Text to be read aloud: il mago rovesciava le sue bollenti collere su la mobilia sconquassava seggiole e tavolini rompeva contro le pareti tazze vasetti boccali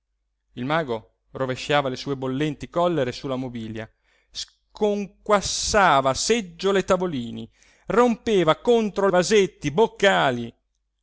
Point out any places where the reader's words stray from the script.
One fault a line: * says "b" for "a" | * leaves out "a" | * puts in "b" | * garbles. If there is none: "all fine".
* leaves out "le pareti tazze"